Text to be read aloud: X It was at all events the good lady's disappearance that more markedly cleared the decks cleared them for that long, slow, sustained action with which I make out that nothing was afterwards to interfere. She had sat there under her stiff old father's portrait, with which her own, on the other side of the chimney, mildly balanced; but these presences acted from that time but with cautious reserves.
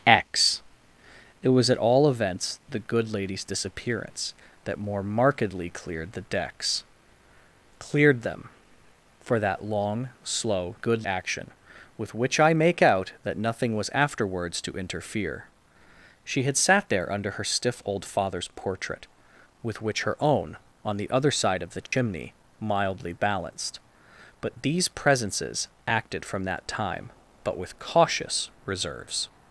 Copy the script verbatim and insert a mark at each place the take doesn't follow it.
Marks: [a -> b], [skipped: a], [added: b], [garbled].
X It was at all events the good lady's disappearance that more markedly cleared the decks cleared them for that long, slow, [sustained -> good] action with which I make out that nothing was afterwards to interfere. She had sat there under her stiff old father's portrait, with which her own, on the other side of the chimney, mildly balanced; but these presences acted from that time but with cautious reserves.